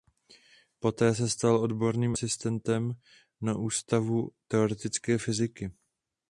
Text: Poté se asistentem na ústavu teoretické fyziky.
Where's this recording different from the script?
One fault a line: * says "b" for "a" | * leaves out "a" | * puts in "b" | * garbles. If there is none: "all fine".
* puts in "stal odborným"